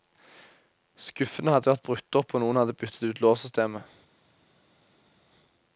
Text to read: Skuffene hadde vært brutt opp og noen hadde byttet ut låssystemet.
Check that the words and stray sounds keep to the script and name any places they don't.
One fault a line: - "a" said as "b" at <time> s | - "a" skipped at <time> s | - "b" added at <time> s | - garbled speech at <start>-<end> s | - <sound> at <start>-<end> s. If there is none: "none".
none